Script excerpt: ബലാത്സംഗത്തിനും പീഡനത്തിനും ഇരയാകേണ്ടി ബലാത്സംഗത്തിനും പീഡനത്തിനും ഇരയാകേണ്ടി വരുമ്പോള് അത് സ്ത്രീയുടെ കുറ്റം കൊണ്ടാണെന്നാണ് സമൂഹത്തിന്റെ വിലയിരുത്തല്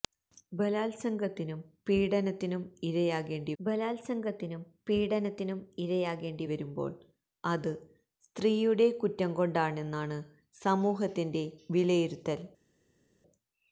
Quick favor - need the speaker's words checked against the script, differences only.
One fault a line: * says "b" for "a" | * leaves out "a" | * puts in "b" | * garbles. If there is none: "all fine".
all fine